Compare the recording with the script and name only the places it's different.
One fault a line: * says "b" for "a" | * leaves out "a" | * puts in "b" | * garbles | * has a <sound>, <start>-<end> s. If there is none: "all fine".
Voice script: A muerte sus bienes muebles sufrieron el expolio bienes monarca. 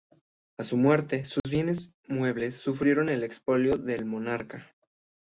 * puts in "su"
* has a dropout, 1.4-1.4 s
* says "del" for "bienes"